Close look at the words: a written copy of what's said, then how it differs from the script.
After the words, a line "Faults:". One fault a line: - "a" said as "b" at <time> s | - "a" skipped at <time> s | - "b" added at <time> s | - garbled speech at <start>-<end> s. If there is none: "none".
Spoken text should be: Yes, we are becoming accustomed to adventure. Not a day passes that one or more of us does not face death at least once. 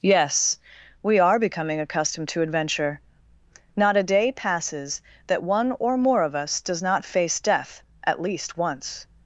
Yes, we are becoming accustomed to adventure. Not a day passes that one or more of us does not face death at least once.
Faults:
none